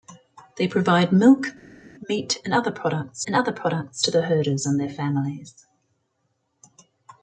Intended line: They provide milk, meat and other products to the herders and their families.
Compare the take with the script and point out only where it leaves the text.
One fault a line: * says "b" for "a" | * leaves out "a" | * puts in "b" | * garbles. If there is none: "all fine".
* puts in "and other products"